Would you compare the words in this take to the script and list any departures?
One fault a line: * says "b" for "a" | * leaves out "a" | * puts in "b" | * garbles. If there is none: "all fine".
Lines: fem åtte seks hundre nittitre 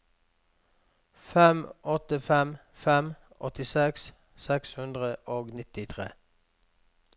* puts in "fem fem åttiseks"
* puts in "og"